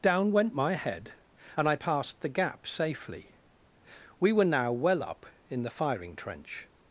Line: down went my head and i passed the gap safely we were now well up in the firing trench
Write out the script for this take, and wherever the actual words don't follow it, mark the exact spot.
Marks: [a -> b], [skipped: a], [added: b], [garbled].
down went my head and i passed the gap safely we were now well up in the firing trench